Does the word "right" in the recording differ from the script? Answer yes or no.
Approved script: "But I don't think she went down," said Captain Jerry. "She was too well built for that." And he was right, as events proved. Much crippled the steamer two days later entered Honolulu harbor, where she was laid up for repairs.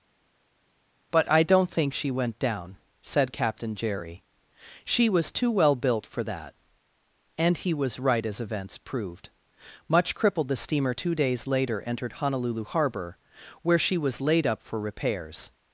no